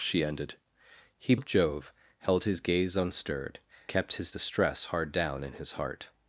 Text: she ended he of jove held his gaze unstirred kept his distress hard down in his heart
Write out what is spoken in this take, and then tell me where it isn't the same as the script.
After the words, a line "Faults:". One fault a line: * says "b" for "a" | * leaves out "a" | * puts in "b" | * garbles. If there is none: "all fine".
she ended he of jove held his gaze unstirred kept his distress hard down in his heart
Faults:
all fine